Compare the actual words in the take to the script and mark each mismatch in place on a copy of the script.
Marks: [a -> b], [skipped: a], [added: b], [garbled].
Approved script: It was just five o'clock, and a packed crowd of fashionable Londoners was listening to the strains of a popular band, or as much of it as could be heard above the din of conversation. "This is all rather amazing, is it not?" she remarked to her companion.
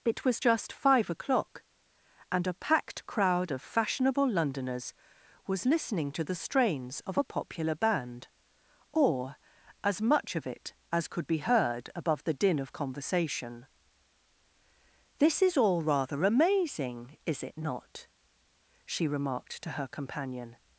It was just five o'clock, and a packed crowd of fashionable Londoners was listening to the strains of a popular band, or as much of it as could be heard above the din of conversation. "This is all rather amazing, is it not?" she remarked to her companion.